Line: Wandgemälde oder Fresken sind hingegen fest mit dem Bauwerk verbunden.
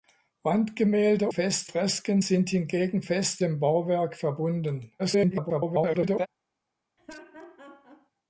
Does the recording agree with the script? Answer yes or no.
no